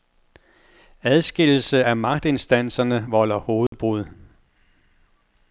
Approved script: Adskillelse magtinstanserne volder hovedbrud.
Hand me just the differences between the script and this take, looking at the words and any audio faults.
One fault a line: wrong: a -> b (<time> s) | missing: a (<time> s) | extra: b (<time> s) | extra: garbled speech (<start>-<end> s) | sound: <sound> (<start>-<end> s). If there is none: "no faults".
extra: af (1.8 s)
sound: dropout (3.7-3.7 s)